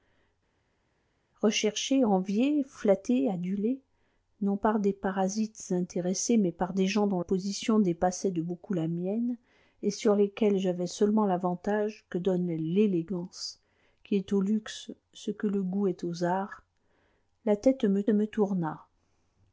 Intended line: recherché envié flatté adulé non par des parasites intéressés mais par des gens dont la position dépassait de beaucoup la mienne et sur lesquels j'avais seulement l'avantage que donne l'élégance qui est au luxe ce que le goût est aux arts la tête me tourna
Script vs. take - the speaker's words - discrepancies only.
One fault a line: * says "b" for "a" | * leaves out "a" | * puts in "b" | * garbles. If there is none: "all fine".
* leaves out "la"
* puts in "me"